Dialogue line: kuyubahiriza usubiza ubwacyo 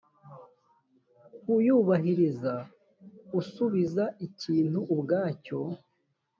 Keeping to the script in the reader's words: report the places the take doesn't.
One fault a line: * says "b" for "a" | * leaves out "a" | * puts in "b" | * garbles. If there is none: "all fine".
* puts in "ikintu"